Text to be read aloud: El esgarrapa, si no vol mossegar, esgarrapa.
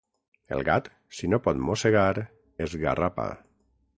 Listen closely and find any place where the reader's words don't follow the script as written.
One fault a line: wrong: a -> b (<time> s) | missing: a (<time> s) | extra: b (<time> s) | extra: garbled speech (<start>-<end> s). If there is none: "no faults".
wrong: esgarrapa -> gat (0.7 s)
wrong: vol -> pot (1.5 s)